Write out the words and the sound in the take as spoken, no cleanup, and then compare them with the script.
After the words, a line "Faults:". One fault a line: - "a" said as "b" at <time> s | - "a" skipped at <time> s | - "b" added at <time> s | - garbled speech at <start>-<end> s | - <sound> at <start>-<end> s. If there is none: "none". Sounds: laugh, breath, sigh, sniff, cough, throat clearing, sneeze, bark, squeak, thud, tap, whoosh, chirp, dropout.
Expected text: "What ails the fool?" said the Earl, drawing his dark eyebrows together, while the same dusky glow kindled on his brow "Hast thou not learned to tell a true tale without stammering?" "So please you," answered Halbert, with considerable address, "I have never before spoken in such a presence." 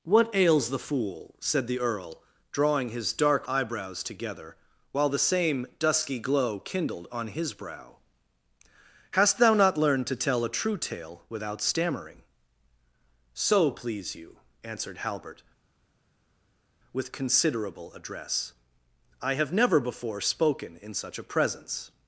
"What ails the fool?" said the Earl, drawing his dark eyebrows together, while the same dusky glow kindled on his brow "Hast thou not learned to tell a true tale without stammering?" "So please you," answered Halbert, with considerable address, "I have never before spoken in such a presence."
Faults:
none